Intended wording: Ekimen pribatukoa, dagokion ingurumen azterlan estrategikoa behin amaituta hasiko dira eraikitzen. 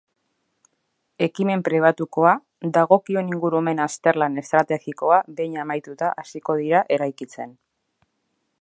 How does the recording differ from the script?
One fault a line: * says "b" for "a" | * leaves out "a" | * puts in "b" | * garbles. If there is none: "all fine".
all fine